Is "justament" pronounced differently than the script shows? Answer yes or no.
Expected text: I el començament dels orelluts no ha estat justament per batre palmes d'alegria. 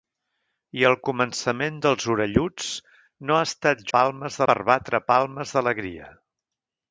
yes